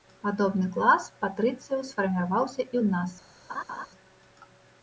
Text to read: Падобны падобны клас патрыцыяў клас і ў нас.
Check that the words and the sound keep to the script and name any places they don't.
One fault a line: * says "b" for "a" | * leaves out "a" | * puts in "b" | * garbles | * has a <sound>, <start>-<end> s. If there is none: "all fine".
* leaves out "падобны"
* says "сфарміраваўся" for "клас"
* has a laugh, 3.5-3.9 s